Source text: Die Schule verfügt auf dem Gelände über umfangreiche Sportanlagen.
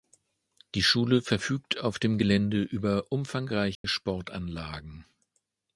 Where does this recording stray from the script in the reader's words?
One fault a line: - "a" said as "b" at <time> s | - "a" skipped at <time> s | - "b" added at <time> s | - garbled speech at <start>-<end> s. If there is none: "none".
none